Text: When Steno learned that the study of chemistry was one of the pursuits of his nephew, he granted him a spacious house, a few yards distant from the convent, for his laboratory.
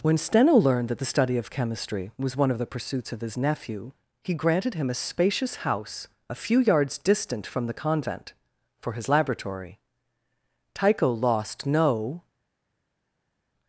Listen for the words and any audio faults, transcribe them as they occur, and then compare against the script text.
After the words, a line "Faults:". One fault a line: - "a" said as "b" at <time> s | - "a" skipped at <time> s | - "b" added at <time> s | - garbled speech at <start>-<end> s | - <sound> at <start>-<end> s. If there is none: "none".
When Steno learned that the study of chemistry was one of the pursuits of his nephew, he granted him a spacious house, a few yards distant from the convent, for his laboratory. Tycho lost no
Faults:
- "Tycho lost no" added at 10.7 s